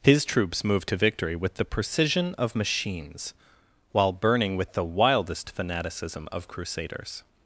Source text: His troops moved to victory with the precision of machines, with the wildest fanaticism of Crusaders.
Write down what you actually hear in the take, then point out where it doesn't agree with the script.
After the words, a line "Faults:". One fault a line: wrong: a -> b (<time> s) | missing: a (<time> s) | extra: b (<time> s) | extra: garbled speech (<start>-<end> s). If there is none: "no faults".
His troops moved to victory with the precision of machines, while burning with the wildest fanaticism of Crusaders.
Faults:
extra: while burning (3.9 s)